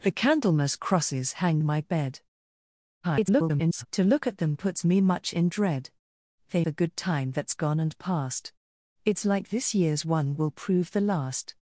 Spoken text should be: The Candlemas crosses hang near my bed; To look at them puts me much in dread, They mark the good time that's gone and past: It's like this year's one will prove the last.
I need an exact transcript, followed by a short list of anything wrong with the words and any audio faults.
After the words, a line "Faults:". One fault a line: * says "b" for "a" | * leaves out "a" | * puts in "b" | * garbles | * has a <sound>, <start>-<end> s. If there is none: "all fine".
The Candlemas crosses hang my bed; [garbled] To look at them puts me much in dread, They the good time that's gone and past: It's like this year's one will prove the last.
Faults:
* leaves out "near"
* garbles
* leaves out "mark"